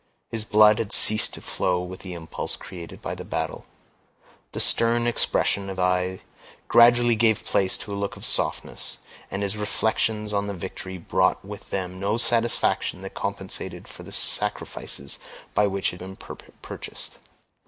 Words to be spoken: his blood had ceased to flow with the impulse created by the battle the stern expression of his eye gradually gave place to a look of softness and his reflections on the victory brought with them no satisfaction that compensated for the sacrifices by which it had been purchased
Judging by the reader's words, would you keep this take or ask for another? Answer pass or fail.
fail